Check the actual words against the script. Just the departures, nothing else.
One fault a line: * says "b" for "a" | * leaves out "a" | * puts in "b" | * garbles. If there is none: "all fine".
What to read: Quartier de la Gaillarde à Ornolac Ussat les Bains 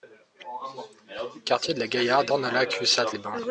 * leaves out "à"